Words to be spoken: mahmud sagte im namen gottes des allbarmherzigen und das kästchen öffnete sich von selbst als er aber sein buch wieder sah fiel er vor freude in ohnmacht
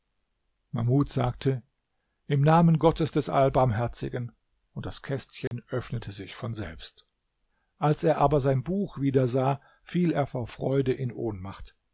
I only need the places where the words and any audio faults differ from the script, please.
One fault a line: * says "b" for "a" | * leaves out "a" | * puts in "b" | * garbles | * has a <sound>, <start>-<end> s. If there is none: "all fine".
* has a dropout, 5.5-5.5 s